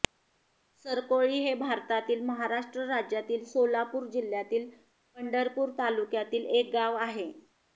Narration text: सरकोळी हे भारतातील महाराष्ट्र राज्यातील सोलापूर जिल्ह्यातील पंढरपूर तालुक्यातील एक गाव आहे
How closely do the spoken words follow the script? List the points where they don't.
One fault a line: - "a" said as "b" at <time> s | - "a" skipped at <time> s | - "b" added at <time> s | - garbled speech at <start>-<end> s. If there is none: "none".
none